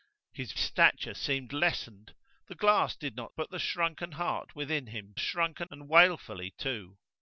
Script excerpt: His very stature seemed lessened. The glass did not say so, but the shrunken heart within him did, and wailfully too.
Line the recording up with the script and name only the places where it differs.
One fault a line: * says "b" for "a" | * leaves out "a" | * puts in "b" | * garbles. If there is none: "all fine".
* leaves out "very"
* leaves out "say so"
* says "shrunken" for "did"